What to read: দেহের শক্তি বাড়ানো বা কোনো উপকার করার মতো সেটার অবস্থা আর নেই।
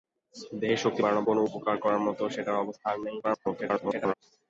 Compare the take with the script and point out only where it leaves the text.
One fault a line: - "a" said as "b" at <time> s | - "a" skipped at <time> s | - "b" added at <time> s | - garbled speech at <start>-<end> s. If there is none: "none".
- "বা" skipped at 1.2 s
- garbled speech at 3.2-4.1 s